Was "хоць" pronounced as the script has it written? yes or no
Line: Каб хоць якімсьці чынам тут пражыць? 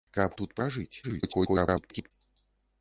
no